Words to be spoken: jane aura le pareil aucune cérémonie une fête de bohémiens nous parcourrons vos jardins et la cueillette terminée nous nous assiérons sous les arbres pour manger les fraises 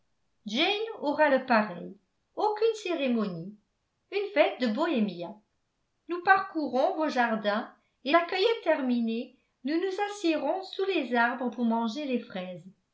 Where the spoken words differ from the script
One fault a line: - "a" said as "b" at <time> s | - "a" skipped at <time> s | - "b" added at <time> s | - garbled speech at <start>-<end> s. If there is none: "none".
none